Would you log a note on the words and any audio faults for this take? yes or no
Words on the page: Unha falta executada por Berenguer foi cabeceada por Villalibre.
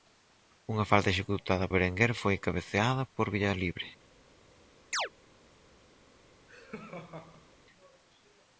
yes